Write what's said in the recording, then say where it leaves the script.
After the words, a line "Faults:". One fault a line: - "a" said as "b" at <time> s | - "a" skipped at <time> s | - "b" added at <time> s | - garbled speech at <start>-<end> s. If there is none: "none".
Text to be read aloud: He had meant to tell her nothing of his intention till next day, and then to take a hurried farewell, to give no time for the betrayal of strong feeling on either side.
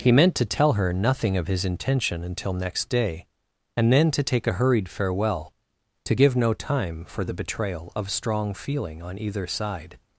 He meant to tell her nothing of his intention until next day, and then to take a hurried farewell, to give no time for the betrayal of strong feeling on either side.
Faults:
- "had" skipped at 0.1 s
- "till" said as "until" at 2.2 s